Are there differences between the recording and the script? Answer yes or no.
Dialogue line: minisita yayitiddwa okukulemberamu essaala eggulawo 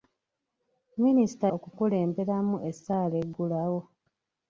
yes